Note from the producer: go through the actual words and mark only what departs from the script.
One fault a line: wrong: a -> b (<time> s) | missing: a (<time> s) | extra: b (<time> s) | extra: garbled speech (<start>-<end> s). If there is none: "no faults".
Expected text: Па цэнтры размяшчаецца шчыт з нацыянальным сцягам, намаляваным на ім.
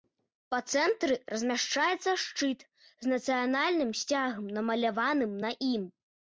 no faults